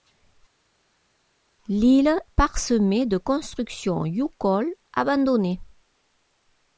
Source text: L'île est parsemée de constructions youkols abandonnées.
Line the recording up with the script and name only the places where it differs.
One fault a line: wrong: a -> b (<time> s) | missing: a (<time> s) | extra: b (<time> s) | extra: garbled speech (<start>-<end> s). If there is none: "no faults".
missing: est (2.2 s)